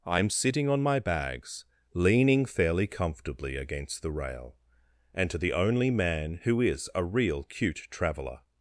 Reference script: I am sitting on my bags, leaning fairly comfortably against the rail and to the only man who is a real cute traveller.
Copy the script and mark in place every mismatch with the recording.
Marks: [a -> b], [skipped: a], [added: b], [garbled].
I am sitting on my bags, leaning fairly comfortably against the rail and to the only man who is a real cute traveller.